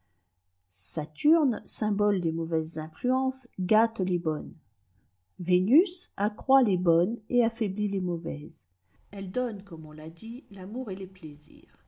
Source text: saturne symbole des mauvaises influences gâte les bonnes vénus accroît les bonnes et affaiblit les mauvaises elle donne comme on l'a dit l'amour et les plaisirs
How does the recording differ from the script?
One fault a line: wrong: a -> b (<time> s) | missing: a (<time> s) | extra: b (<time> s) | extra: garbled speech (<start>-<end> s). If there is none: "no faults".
no faults